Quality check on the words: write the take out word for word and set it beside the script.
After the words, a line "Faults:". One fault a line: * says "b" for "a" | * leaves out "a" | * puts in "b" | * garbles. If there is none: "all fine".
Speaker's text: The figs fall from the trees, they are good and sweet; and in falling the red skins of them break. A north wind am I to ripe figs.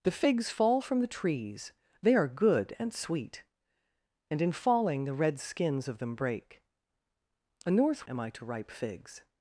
The figs fall from the trees, they are good and sweet; and in falling the red skins of them break. A north am I to ripe figs.
Faults:
* leaves out "wind"